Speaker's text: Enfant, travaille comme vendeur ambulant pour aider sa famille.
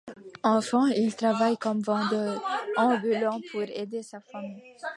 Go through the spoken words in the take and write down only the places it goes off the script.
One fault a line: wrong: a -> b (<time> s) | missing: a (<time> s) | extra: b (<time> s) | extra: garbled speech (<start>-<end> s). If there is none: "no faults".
extra: il (0.9 s)